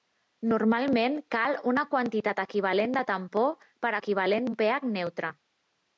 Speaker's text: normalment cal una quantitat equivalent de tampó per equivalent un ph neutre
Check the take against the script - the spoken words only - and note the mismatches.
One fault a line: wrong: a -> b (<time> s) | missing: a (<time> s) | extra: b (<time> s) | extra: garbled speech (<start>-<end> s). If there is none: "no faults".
no faults